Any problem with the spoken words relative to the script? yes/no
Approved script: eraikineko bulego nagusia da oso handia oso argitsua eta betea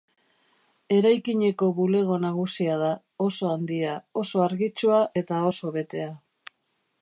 yes